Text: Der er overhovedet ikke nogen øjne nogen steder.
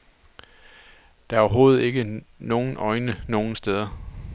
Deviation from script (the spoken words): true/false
false